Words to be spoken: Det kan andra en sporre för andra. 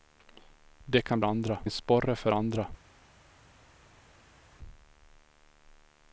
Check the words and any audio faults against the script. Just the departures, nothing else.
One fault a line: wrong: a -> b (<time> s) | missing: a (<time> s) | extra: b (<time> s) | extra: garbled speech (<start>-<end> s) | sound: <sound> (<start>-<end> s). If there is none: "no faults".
no faults